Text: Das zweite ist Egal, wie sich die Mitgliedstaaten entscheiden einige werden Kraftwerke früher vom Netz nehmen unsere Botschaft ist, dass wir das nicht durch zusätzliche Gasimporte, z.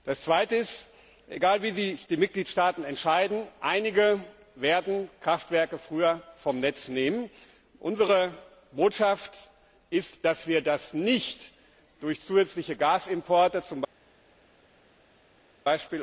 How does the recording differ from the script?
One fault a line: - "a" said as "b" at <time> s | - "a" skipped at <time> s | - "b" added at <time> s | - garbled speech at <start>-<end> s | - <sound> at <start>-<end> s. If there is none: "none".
none